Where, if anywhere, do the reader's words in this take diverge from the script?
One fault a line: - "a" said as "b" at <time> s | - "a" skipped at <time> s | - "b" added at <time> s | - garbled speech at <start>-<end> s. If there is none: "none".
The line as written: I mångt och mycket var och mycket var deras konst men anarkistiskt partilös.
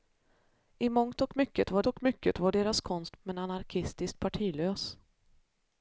none